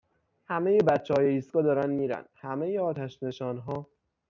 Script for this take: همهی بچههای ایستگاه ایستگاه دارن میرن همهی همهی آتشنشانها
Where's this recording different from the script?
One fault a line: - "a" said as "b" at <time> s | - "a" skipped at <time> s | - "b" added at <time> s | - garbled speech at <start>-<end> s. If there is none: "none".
- "ایستگاه" skipped at 1.6 s
- "همهی" skipped at 2.8 s